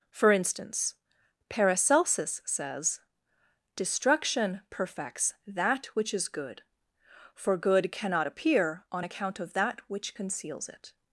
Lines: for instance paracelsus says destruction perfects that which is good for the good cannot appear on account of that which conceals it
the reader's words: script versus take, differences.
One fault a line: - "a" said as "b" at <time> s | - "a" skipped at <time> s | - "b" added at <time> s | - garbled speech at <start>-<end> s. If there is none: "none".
- "the" skipped at 7.6 s